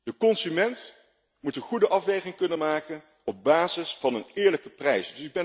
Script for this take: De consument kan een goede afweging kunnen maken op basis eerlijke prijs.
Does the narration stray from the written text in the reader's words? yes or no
yes